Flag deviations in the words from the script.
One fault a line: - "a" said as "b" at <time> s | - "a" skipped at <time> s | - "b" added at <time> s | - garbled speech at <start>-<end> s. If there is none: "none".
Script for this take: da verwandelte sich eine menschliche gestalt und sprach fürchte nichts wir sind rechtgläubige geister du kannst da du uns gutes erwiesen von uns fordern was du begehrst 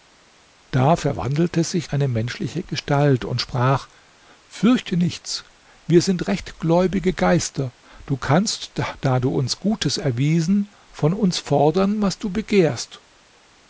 none